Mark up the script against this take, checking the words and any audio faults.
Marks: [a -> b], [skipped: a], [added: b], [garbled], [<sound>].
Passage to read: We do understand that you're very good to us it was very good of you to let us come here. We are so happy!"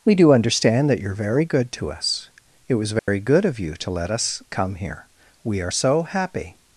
We do understand that you're very good to us it was very [dropout] good of you to let us come here. We are so happy!"